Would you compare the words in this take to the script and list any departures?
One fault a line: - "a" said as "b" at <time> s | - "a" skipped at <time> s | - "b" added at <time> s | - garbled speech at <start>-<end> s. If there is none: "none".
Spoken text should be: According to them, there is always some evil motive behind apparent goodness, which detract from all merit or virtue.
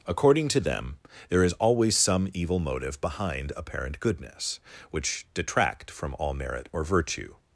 none